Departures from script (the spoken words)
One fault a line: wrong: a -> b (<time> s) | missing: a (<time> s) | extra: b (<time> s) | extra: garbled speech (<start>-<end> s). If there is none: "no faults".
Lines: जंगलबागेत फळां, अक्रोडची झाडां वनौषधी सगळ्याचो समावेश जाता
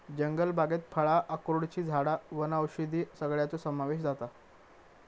no faults